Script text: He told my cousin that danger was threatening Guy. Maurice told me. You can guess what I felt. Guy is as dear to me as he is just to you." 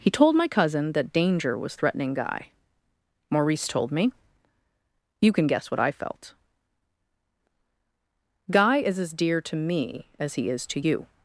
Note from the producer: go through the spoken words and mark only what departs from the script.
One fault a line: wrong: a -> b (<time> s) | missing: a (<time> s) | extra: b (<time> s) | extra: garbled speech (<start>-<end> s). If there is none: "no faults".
missing: just (10.7 s)